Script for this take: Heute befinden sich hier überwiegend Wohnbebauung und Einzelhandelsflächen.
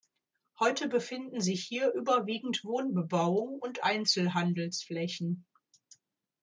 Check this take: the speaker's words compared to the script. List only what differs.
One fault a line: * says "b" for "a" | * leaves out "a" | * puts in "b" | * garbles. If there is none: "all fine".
all fine